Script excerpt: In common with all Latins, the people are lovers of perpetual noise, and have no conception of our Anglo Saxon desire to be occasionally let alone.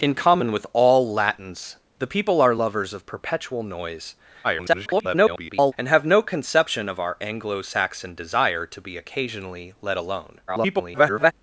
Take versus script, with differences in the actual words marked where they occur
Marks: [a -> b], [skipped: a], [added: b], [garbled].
In common with all Latins, the people are lovers of perpetual noise, [garbled] and have no conception of our Anglo Saxon desire to be occasionally let alone. [garbled]